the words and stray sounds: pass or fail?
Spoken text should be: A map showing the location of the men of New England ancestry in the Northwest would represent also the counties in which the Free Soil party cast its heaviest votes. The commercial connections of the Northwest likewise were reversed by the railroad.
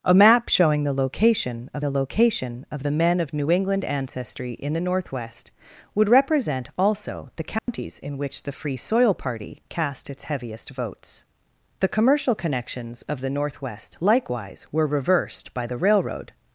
fail